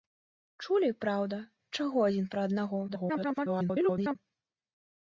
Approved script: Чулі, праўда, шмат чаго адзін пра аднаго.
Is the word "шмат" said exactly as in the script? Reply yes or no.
no